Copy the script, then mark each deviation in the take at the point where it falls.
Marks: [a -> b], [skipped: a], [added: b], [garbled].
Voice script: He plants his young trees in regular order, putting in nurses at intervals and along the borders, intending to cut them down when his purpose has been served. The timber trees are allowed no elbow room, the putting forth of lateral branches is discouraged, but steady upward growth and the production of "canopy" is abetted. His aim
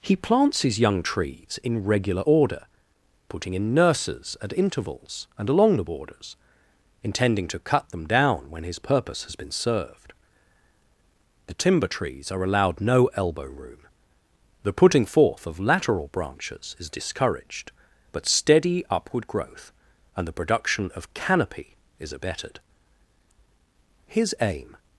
He plants his young trees in regular order, putting in nurses at intervals and along the borders, intending to cut them down when his purpose has been served. The timber trees are allowed no elbow room, the putting forth of lateral branches is discouraged, but steady upward growth and the production of "canopy" is abetted. His aim